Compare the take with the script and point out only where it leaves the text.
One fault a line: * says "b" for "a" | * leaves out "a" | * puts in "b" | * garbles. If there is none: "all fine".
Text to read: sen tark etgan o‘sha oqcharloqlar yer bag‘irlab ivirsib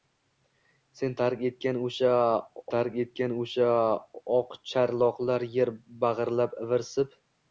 * puts in "tark etgan o‘sha"